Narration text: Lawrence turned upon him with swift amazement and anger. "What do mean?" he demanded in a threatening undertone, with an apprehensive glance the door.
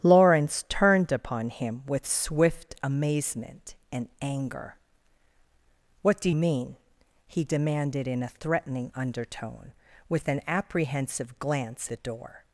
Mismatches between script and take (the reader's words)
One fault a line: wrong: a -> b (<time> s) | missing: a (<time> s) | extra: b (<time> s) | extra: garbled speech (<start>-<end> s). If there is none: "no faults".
no faults